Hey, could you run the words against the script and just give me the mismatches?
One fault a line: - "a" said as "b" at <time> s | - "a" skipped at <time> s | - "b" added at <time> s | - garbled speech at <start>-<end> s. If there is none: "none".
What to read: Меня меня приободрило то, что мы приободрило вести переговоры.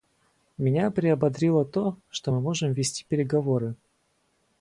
- "меня" skipped at 0.9 s
- "приободрило" said as "можем" at 2.4 s